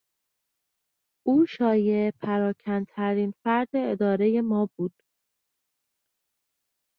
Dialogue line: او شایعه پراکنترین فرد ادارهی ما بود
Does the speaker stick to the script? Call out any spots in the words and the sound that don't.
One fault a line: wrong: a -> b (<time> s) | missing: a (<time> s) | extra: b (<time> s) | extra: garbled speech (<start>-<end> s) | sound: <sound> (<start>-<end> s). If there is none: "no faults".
no faults